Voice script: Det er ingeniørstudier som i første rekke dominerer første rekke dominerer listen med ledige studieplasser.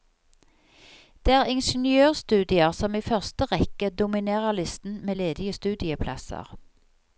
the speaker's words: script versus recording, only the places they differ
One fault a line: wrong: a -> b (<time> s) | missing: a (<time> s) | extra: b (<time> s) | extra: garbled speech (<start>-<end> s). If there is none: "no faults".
missing: første rekke dominerer (4.5 s)